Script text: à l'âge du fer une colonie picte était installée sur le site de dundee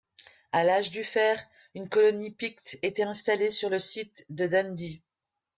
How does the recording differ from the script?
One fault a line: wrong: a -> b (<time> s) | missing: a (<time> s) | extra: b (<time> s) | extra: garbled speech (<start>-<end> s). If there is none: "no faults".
no faults